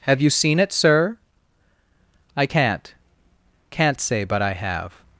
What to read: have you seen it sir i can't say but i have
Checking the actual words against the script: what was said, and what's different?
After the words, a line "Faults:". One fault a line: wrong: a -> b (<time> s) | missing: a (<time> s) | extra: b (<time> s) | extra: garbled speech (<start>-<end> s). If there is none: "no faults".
have you seen it sir i can't can't say but i have
Faults:
extra: can't (3.7 s)